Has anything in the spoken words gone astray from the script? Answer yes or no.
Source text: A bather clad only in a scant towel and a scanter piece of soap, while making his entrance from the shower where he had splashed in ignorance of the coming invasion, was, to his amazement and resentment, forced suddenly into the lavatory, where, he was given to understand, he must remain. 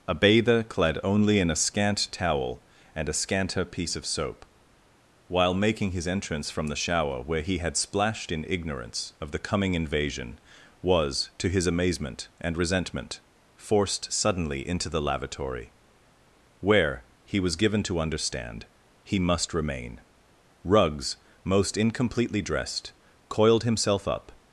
yes